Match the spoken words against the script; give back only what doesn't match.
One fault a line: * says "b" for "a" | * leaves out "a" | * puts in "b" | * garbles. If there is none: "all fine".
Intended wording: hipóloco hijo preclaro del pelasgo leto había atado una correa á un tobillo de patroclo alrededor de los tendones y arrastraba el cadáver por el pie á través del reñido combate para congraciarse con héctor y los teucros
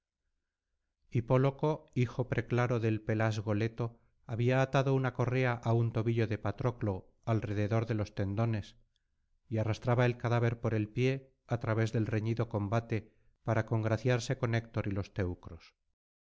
all fine